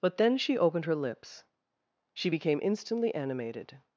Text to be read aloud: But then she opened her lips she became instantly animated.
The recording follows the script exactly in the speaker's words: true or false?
true